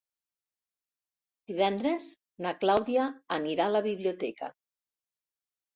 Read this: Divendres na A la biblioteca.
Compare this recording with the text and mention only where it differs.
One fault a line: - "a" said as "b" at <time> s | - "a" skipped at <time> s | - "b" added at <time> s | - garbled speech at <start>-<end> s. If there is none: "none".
- "Clàudia anirà" added at 2.6 s